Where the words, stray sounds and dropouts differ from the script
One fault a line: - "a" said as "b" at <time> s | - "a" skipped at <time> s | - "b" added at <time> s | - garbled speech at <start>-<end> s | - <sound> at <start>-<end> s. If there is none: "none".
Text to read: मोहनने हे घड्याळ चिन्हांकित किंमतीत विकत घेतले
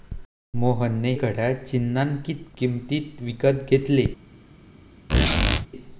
- "हे" skipped at 1.1 s
- squeak at 5.1-5.7 s